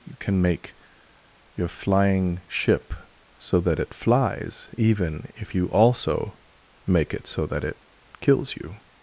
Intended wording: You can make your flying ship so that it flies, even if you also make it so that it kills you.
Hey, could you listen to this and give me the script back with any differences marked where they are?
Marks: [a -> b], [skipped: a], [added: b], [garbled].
You can make your flying ship so that it flies, even if you also make it so that it kills you.